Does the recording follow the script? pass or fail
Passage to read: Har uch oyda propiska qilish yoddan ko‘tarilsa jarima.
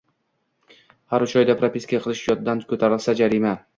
pass